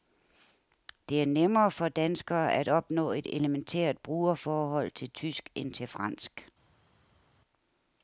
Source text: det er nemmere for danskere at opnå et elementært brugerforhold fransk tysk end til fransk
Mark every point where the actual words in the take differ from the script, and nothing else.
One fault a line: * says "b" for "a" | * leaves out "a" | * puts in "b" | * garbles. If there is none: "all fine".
* says "til" for "fransk"